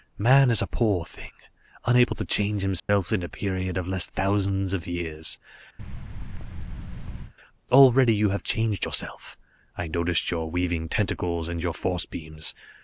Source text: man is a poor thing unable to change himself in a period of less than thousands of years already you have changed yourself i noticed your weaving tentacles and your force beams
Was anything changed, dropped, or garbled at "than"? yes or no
yes